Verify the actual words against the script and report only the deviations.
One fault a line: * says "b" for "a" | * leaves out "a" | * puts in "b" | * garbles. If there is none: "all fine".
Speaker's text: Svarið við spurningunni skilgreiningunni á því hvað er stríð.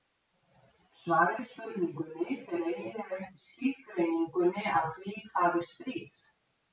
* puts in "fer eiginlega eftir"